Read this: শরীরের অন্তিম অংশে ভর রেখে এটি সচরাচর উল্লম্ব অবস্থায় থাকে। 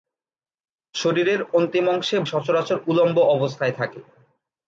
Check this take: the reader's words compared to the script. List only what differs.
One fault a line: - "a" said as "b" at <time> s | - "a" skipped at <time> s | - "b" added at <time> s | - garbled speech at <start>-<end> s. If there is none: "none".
- "ভর রেখে এটি" skipped at 2.2 s